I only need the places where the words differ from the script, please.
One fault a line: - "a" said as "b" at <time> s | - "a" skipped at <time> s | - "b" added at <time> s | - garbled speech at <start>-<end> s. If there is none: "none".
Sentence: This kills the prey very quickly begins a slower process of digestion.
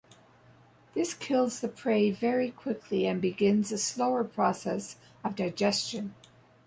- "and" added at 3.0 s